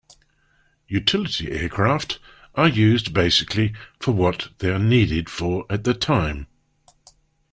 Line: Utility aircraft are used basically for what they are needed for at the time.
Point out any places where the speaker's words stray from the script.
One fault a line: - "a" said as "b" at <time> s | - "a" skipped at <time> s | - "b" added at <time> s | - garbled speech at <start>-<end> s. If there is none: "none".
none